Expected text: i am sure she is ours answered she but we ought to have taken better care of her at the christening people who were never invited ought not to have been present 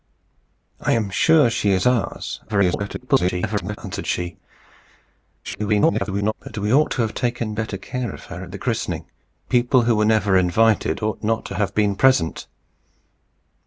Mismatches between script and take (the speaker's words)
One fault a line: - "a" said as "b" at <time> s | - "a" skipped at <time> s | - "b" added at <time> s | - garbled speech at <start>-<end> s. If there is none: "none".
- garbled speech at 2.5-3.8 s
- garbled speech at 5.4-6.3 s